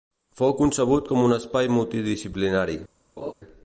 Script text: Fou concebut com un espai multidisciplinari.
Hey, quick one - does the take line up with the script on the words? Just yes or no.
yes